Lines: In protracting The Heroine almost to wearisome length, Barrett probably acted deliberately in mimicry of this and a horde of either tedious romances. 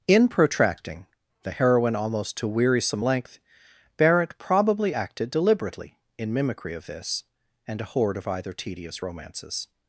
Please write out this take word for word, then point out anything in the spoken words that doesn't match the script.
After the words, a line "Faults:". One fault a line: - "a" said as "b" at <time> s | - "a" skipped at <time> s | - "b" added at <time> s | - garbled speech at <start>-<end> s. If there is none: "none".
In protracting The Heroine almost to wearisome length, Barrett probably acted deliberately in mimicry of this and a horde of either tedious romances.
Faults:
none